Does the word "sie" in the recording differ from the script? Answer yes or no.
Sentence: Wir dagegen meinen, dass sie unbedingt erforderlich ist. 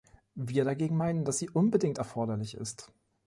no